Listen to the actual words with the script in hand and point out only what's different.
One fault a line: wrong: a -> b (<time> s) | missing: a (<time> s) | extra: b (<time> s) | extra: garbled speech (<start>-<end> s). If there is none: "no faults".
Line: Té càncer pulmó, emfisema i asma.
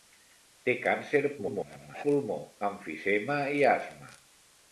extra: garbled speech (1.4-2.1 s)